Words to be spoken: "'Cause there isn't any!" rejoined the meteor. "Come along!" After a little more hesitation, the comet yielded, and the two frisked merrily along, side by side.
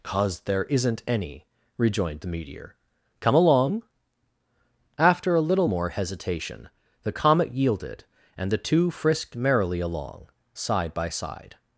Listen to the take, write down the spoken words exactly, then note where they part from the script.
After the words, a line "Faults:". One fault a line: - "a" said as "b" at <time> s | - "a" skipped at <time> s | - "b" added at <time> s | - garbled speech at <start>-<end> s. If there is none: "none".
"'Cause there isn't any!" rejoined the meteor. "Come along!" After a little more hesitation, the comet yielded, and the two frisked merrily along, side by side.
Faults:
none